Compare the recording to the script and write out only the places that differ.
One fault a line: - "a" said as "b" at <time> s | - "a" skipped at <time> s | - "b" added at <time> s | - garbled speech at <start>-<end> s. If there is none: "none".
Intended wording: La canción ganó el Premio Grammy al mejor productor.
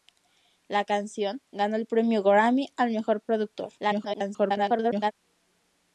- garbled speech at 3.8-5.1 s